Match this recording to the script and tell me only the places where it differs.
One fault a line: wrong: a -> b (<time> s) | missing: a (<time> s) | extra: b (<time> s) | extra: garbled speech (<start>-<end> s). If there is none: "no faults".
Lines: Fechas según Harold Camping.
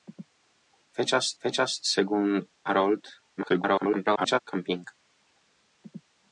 extra: fechas (1.4 s)
extra: garbled speech (3.4-4.4 s)